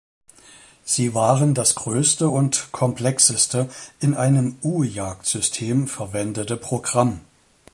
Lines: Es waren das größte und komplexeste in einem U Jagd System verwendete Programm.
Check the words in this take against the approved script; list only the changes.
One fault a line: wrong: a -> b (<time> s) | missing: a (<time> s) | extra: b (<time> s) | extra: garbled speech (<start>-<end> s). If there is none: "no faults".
wrong: Es -> Sie (0.8 s)